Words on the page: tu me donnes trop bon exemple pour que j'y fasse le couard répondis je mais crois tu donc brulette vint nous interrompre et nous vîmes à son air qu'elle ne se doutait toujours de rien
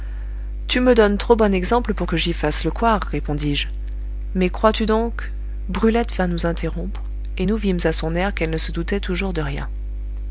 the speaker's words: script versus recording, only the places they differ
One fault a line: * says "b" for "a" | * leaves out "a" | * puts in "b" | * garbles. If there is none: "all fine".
all fine